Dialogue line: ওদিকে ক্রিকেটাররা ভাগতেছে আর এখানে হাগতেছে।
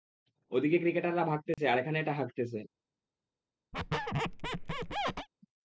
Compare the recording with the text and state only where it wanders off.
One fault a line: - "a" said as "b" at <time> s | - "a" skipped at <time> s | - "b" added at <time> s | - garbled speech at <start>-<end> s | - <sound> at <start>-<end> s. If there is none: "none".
- dropout at 1.5-1.6 s
- "এটা" added at 2.0 s
- squeak at 3.7-5.3 s